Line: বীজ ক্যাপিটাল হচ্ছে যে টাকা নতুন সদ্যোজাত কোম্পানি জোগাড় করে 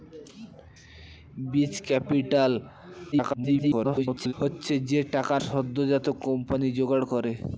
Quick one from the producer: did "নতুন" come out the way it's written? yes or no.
no